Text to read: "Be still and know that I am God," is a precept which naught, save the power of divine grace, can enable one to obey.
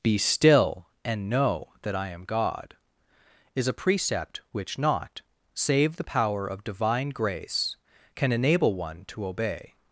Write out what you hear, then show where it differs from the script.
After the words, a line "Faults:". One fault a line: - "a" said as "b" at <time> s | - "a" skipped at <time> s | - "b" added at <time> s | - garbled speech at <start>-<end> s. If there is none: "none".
"Be still and know that I am God," is a precept which naught, save the power of divine grace, can enable one to obey.
Faults:
none